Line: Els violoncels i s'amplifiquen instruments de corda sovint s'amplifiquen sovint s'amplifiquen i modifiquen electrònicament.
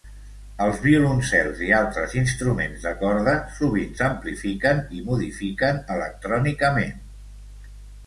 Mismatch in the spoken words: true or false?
true